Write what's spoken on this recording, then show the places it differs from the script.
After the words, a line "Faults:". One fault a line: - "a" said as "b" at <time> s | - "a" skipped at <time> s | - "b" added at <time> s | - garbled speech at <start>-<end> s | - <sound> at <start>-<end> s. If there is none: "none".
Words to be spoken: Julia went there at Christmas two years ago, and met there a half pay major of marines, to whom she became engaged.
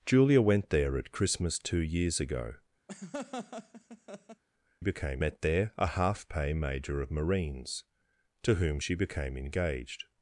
Julia went there at Christmas two years ago, became met there a half pay major of marines, to whom she became engaged.
Faults:
- laugh at 2.9-4.4 s
- "and" said as "became" at 4.8 s